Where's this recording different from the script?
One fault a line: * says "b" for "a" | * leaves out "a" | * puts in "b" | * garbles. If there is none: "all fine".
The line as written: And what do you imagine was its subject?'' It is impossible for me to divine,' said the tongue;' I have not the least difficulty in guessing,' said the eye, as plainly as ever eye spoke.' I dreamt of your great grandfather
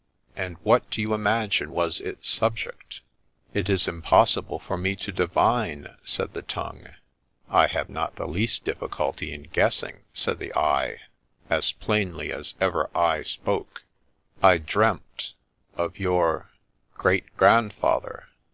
all fine